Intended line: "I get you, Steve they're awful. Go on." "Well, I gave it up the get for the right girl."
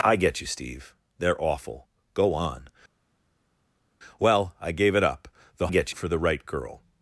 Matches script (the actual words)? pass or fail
pass